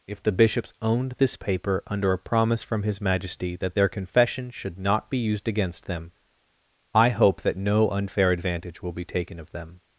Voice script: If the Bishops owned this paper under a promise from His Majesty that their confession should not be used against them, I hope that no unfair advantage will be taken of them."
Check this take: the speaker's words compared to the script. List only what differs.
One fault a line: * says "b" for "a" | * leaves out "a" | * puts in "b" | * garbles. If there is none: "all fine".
all fine